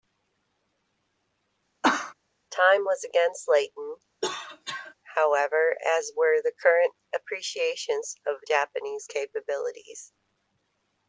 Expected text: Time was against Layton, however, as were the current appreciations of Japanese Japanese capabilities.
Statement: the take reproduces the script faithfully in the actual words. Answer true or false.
false